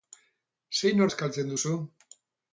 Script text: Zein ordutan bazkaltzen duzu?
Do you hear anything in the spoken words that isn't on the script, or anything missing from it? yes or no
yes